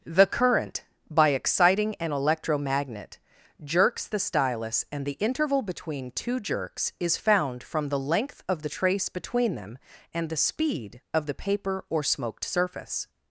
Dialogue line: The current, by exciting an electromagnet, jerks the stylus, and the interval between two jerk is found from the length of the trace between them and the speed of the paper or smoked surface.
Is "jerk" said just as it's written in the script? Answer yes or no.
no